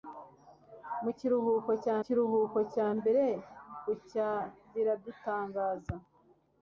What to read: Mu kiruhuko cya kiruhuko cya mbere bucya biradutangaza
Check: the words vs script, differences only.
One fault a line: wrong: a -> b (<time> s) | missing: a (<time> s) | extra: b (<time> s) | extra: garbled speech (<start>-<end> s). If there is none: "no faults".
no faults